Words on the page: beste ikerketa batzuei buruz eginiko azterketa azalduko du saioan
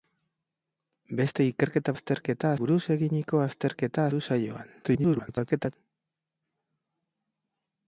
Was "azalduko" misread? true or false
true